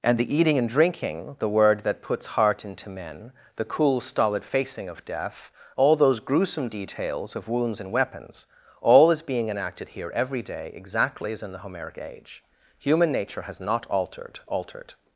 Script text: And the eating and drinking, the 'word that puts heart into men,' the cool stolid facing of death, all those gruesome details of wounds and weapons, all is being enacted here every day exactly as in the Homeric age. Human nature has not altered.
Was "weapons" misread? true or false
false